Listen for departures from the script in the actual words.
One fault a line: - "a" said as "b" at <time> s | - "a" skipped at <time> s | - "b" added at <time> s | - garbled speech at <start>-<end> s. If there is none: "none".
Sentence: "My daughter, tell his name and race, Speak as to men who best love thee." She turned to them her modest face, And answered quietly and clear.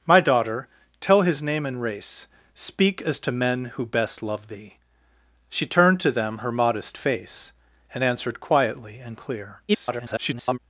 - garbled speech at 9.7-10.6 s